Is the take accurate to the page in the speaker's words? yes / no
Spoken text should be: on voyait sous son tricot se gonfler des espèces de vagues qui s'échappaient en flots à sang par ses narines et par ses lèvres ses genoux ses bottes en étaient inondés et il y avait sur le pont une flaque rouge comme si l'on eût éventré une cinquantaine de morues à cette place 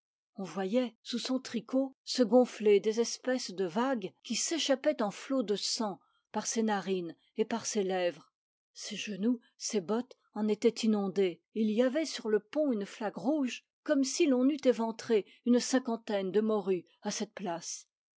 no